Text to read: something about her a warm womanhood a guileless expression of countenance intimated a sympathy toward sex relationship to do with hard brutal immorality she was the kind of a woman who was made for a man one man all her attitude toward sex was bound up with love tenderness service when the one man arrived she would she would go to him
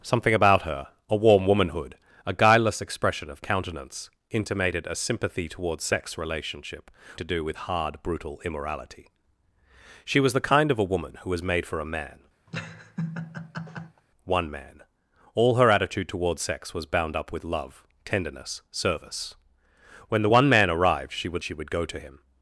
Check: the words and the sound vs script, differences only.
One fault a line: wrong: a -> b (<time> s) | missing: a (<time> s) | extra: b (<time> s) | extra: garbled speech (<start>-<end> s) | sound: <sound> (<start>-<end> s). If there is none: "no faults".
sound: laugh (12.5-14.0 s)